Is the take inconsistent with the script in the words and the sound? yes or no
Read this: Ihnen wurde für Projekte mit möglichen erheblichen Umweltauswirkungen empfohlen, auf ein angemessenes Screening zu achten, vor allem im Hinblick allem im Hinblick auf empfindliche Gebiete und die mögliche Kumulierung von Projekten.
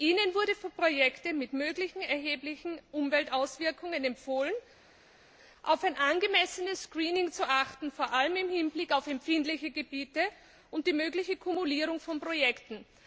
yes